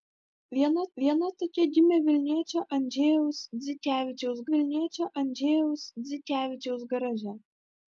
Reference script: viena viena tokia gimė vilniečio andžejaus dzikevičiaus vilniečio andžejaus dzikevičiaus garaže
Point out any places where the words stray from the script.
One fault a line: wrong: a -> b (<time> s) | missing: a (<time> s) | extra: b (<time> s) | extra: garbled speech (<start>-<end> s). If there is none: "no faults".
no faults